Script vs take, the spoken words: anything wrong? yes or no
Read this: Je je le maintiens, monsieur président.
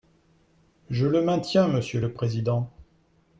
yes